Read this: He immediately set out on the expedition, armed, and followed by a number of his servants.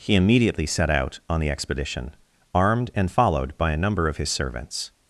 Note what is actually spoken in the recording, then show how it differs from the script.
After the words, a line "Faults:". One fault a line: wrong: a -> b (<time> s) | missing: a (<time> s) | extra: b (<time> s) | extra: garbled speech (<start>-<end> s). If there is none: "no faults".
He immediately set out on the expedition, armed, and followed by a number of his servants.
Faults:
no faults